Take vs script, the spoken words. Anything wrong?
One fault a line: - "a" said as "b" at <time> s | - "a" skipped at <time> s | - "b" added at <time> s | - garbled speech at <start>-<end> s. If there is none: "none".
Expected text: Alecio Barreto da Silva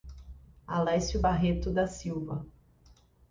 none